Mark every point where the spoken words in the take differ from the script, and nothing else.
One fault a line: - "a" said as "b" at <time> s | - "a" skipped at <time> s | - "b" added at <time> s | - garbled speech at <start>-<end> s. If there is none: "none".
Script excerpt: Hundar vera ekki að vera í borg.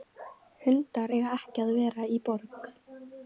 - "vera" said as "eiga" at 1.2 s